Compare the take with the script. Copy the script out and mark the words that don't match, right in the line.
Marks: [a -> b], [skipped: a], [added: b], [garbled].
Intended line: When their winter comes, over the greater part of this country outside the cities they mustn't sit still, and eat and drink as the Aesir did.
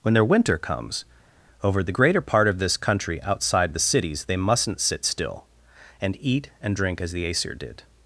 When their winter comes, over the greater part of this country outside the cities they mustn't sit still, and eat and drink as the Aesir did.